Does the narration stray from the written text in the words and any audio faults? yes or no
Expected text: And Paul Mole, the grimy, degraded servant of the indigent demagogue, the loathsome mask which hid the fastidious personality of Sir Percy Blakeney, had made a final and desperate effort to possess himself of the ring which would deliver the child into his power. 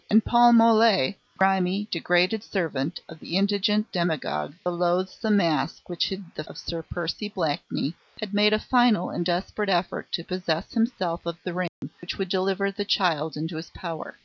yes